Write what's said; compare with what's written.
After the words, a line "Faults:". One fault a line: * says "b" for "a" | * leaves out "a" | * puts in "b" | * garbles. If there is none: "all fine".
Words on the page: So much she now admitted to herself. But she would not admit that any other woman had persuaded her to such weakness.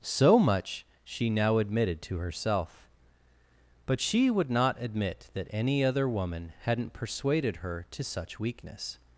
So much she now admitted to herself. But she would not admit that any other woman hadn't persuaded her to such weakness.
Faults:
* says "hadn't" for "had"